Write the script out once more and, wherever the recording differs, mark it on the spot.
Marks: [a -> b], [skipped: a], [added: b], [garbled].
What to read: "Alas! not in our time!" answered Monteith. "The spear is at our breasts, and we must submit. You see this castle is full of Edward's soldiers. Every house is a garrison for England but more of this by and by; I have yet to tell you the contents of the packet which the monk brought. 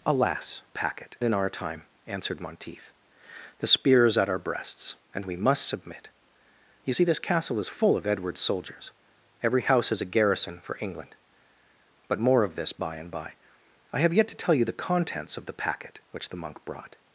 "Alas! [not -> packet] in our time!" answered Monteith. "The spear is at our breasts, and we must submit. You see this castle is full of Edward's soldiers. Every house is a garrison for England but more of this by and by; I have yet to tell you the contents of the packet which the monk brought.